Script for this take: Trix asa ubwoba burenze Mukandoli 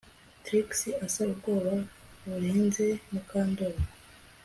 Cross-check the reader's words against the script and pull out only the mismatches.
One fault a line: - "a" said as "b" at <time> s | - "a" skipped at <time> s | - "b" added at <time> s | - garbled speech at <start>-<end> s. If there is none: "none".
none